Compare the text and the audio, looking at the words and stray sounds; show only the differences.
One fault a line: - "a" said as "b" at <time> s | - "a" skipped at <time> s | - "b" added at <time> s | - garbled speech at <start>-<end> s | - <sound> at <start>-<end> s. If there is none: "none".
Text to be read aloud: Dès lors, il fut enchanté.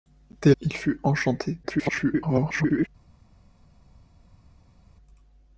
- "lors" skipped at 0.6 s
- garbled speech at 1.6-2.9 s